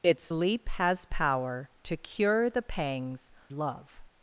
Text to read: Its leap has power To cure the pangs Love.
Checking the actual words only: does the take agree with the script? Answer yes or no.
yes